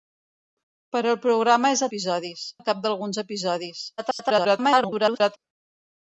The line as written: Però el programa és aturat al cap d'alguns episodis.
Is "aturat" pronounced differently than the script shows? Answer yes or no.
yes